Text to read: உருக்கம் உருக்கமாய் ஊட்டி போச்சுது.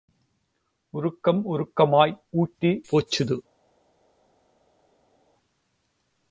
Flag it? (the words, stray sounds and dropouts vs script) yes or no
no